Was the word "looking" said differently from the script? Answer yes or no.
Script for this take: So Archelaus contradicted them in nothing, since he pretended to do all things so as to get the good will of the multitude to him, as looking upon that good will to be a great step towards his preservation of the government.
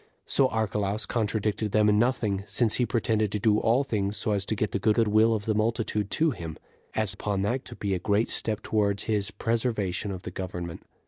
yes